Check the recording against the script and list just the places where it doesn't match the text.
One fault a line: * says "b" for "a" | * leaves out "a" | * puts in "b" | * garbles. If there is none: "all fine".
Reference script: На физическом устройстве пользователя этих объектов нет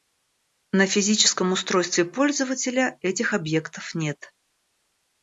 all fine